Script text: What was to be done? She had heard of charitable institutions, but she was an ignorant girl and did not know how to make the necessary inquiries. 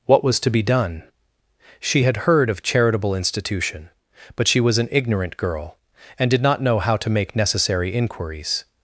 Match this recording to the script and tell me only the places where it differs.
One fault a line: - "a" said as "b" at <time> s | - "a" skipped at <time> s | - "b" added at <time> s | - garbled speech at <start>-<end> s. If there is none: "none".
- "institutions" said as "institution" at 3.1 s
- "the" skipped at 7.4 s